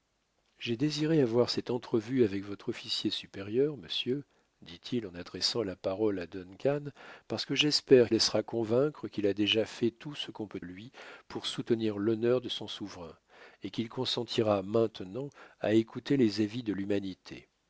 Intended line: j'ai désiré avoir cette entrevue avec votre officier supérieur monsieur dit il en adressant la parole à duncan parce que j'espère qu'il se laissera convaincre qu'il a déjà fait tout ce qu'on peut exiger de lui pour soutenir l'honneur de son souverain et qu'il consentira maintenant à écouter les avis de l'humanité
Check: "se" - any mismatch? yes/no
yes